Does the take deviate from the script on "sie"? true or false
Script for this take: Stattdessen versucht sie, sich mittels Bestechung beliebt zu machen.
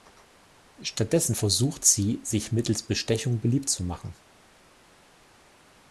false